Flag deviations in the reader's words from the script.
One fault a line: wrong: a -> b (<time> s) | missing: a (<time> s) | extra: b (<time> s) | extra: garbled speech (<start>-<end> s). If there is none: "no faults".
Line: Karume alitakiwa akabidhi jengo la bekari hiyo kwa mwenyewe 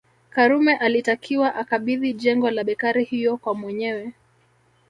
no faults